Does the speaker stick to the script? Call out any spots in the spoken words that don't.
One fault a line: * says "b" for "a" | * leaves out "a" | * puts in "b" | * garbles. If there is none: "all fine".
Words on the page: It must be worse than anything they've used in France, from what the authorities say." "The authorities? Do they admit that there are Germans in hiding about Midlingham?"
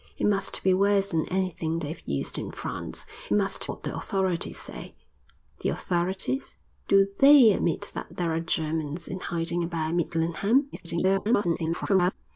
* says "must" for "from"
* garbles